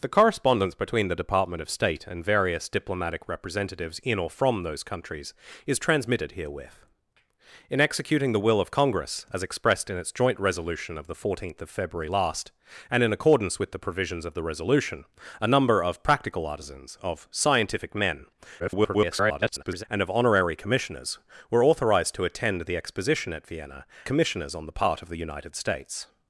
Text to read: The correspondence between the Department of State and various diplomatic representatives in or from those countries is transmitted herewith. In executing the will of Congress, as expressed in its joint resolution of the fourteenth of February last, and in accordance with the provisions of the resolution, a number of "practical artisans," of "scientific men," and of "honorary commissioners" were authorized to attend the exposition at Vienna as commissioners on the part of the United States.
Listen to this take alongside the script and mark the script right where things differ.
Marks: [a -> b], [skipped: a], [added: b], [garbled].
The correspondence between the Department of State and various diplomatic representatives in or from those countries is transmitted herewith. In executing the will of Congress, as expressed in its joint resolution of the fourteenth of February last, and in accordance with the provisions of the resolution, a number of "practical artisans," of "scientific men," [garbled] and of "honorary commissioners" were authorized to attend the exposition at Vienna [skipped: as] commissioners on the part of the United States.